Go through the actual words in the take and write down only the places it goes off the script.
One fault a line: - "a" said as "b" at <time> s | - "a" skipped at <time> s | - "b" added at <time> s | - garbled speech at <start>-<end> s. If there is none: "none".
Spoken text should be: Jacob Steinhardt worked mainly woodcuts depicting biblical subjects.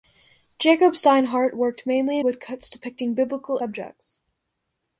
none